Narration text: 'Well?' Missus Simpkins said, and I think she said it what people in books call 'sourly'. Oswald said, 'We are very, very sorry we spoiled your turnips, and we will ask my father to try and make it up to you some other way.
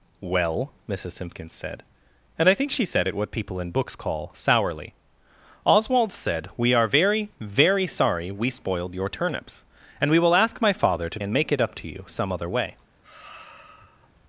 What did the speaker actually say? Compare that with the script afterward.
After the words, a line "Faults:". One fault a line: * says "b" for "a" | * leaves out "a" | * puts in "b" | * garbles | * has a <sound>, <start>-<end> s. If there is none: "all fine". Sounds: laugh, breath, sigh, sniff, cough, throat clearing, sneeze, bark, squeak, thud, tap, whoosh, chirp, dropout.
'Well?' Missus Simpkins said, and I think she said it what people in books call 'sourly'. Oswald said, 'We are very, very sorry we spoiled your turnips, and we will ask my father to and make it up to you some other way.
Faults:
* leaves out "try"
* has a sigh, 13.0-14.1 s